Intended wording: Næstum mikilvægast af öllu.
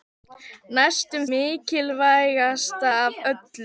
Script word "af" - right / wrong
right